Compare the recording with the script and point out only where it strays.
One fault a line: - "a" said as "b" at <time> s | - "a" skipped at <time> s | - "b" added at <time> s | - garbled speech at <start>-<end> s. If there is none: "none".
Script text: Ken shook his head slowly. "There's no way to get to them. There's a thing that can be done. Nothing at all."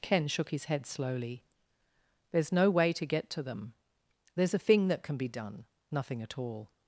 none